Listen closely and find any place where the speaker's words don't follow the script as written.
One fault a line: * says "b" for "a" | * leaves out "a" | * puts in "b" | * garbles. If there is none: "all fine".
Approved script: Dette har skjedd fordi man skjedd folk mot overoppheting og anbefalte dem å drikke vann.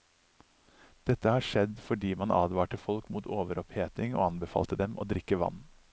* says "advarte" for "skjedd"